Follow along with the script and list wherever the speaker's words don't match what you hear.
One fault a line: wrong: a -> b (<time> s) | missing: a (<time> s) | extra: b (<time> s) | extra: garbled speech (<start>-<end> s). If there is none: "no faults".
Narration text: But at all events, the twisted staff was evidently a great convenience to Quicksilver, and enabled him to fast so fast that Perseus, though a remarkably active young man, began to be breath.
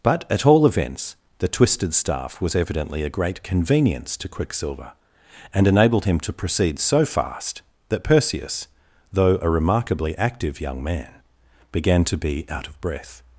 wrong: fast -> proceed (6.3 s)
extra: out of (12.5 s)